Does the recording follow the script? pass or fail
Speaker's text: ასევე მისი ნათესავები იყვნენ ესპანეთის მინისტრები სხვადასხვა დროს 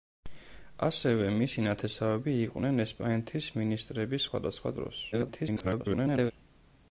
fail